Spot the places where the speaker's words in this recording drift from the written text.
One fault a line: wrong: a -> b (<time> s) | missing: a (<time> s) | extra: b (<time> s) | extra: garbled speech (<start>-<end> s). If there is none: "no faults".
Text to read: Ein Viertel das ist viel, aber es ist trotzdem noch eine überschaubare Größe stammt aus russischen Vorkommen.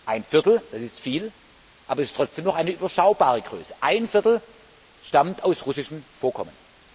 no faults